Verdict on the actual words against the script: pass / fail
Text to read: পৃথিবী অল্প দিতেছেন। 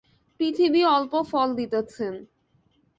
fail